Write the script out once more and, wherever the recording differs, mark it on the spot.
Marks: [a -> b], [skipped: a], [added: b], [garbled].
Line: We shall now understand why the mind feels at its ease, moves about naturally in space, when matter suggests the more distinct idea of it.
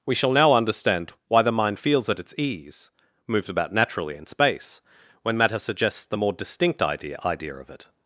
We shall now understand why the mind feels at its ease, moves about naturally in space, when matter suggests the more distinct idea [added: idea] of it.